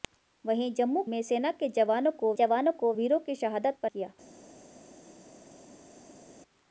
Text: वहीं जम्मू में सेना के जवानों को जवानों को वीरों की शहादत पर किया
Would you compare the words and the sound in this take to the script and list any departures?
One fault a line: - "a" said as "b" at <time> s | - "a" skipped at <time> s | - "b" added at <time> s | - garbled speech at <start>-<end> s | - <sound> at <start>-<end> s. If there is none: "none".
none